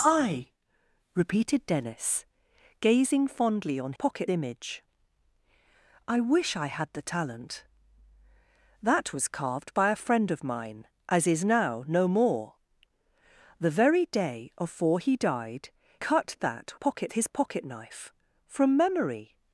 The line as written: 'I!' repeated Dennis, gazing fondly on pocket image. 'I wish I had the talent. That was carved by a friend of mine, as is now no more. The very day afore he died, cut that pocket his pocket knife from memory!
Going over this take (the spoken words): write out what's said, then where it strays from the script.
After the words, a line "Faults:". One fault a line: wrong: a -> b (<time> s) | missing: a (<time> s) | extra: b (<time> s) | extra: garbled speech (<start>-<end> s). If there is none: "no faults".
'I!' repeated Dennis, gazing fondly on pocket image. 'I wish I had the talent. That was carved by a friend of mine, as is now no more. The very day afore he died, cut that pocket his pocket knife from memory!
Faults:
no faults